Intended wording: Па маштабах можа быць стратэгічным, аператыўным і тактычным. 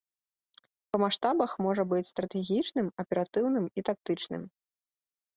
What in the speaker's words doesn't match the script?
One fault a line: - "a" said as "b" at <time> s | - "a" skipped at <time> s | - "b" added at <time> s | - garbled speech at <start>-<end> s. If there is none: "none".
none